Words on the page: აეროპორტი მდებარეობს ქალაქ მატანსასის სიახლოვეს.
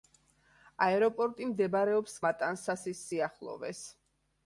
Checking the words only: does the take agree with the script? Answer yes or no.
no